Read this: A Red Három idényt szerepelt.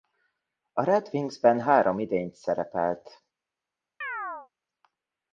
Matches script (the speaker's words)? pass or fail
fail